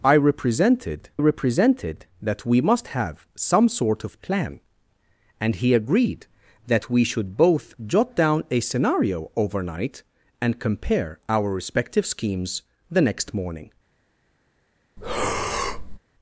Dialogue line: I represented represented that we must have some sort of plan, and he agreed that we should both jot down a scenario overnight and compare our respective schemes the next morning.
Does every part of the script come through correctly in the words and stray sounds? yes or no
no